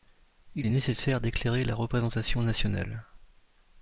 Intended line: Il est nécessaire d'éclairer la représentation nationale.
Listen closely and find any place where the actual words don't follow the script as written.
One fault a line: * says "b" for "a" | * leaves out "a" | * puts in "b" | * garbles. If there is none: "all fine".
all fine